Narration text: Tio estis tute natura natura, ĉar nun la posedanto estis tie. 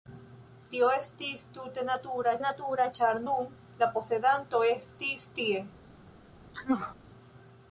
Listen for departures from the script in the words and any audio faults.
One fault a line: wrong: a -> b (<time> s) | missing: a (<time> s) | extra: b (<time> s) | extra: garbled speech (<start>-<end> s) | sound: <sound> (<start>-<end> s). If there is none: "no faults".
sound: sneeze (6.5-7.0 s)